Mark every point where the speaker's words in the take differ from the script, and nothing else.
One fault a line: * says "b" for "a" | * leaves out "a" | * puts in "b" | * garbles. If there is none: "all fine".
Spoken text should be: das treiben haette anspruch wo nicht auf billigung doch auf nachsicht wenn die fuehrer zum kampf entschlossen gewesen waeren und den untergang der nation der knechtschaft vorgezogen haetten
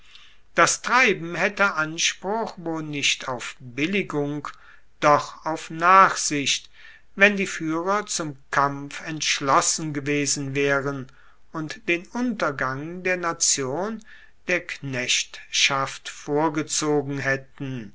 all fine